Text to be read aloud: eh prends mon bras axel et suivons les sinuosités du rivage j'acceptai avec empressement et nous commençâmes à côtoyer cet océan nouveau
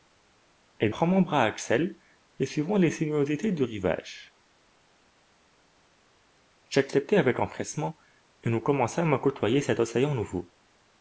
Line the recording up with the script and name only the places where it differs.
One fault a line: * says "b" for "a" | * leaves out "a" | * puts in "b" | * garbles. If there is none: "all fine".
all fine